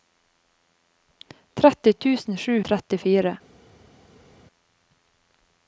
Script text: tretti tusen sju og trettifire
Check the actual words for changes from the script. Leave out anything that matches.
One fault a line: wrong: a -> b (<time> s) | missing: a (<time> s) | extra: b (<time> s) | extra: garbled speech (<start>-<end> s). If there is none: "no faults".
no faults